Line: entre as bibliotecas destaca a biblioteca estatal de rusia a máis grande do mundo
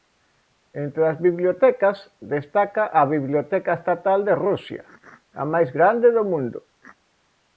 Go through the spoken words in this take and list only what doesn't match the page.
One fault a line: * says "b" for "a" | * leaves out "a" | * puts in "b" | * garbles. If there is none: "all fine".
all fine